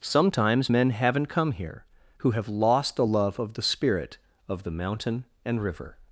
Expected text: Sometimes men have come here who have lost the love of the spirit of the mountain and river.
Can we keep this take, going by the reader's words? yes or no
no